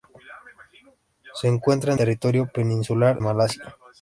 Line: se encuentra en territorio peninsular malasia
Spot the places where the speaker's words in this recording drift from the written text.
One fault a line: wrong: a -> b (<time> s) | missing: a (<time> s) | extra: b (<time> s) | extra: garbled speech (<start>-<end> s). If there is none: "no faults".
no faults